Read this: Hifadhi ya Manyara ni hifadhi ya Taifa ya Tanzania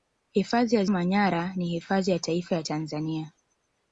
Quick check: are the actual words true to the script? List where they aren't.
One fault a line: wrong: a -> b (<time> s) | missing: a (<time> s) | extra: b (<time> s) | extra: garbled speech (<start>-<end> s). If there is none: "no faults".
no faults